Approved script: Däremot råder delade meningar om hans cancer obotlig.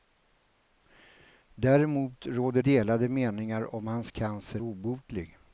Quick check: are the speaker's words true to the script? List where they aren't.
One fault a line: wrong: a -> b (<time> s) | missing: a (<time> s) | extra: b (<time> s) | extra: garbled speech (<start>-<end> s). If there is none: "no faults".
no faults